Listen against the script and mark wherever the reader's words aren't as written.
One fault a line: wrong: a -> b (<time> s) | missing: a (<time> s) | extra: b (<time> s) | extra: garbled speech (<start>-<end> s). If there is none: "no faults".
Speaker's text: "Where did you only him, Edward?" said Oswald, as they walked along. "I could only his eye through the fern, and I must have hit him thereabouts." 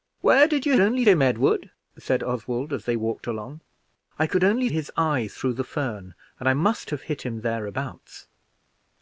no faults